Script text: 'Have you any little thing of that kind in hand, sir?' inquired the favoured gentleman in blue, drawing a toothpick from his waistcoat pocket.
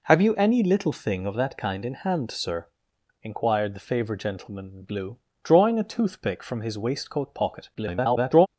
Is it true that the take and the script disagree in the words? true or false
true